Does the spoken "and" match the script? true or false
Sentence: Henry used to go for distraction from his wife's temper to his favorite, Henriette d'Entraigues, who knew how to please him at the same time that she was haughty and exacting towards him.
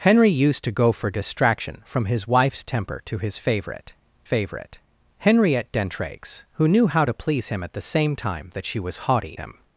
false